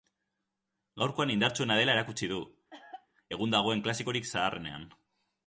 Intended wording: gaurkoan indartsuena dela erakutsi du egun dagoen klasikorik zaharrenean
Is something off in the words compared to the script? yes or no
no